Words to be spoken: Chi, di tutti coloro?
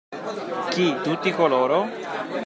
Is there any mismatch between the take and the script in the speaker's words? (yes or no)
yes